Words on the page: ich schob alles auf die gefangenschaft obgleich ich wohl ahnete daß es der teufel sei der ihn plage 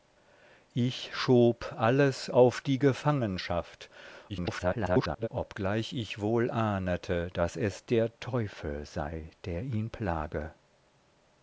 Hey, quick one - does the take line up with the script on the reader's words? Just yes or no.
no